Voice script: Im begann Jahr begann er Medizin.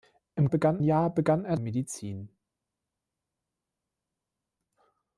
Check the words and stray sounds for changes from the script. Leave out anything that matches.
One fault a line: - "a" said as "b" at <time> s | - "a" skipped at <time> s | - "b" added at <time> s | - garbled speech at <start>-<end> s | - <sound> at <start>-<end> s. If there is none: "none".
none